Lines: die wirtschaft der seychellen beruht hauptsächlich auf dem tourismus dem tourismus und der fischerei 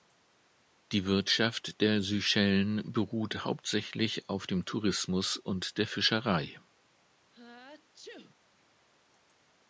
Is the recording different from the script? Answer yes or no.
yes